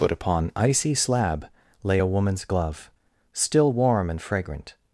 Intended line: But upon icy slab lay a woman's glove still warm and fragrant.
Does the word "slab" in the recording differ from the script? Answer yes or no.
no